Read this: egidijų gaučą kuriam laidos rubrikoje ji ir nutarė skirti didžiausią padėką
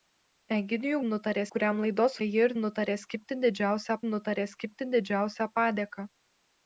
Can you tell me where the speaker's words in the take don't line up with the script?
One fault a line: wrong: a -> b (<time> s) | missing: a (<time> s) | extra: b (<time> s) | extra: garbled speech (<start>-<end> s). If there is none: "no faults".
wrong: gaučą -> nutarė (1.1 s)
missing: rubrikoje (2.2 s)
extra: nutarė skirti didžiausią (4.1 s)